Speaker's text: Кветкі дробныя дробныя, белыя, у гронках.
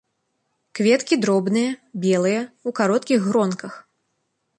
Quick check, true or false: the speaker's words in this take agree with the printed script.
false